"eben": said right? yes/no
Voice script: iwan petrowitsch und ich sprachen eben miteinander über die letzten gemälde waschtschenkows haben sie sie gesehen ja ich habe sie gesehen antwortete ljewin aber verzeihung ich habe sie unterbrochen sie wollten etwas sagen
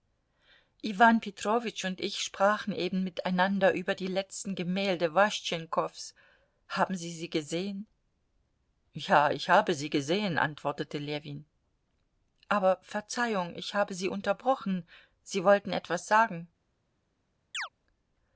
yes